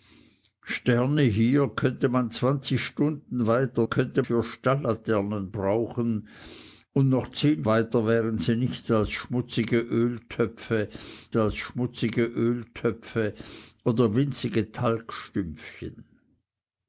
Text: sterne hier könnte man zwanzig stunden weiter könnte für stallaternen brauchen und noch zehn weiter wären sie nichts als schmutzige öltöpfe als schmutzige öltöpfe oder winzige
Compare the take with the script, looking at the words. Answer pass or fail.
pass